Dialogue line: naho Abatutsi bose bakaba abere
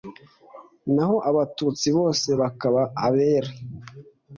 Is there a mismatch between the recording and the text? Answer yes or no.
no